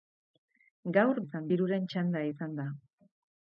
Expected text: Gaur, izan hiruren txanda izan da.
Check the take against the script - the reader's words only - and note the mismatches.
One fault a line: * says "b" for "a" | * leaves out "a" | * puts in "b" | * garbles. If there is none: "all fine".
all fine